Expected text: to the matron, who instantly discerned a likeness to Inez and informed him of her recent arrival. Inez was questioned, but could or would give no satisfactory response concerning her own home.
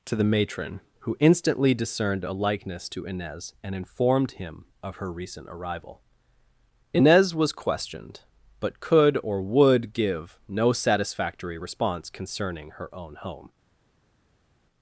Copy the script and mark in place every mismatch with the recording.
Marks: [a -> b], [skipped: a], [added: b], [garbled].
to the matron, who instantly discerned a likeness to Inez and informed him of her recent arrival. Inez was questioned, but could or would give no satisfactory response concerning her own home.